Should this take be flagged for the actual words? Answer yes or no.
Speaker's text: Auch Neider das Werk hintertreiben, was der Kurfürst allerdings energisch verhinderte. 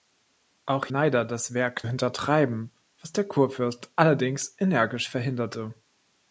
no